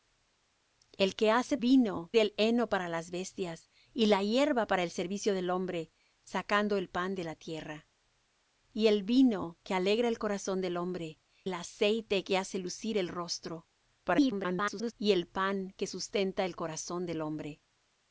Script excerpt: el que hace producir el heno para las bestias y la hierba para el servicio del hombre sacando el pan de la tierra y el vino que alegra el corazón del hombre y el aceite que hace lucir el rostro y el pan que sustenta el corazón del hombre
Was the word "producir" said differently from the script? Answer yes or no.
yes